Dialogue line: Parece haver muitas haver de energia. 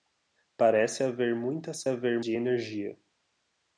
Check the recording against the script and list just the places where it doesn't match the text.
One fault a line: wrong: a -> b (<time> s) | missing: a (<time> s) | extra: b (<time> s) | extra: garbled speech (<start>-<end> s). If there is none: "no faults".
no faults